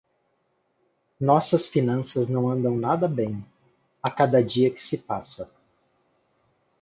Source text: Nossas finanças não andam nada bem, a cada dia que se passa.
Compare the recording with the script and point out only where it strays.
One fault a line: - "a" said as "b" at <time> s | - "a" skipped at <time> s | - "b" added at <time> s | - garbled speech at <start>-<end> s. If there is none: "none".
none